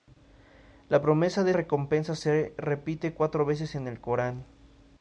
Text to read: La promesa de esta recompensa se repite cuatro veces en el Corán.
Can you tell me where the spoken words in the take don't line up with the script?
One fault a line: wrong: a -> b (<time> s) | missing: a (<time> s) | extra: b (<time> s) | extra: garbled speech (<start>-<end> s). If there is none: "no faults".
missing: esta (1.5 s)